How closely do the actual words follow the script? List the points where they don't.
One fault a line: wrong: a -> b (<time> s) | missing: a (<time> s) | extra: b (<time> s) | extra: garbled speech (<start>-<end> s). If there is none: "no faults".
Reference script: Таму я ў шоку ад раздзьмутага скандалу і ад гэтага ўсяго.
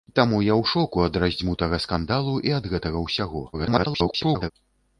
extra: garbled speech (3.5-4.5 s)